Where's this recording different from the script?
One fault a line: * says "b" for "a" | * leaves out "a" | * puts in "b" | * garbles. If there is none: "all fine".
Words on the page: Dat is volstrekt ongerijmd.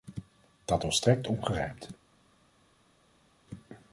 * leaves out "is"